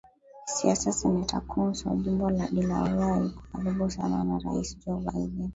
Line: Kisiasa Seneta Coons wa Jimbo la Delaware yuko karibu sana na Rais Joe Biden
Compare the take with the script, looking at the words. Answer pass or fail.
pass